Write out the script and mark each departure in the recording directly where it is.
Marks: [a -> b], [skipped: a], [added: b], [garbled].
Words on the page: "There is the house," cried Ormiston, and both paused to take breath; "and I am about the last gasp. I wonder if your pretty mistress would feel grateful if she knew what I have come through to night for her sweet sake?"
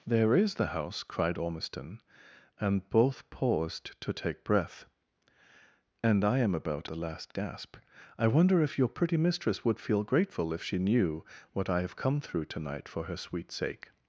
"There is the house," cried Ormiston, and both paused to take breath; "and I am about the last gasp. I wonder if your pretty mistress would feel grateful if she knew what I have come through to night for her sweet sake?"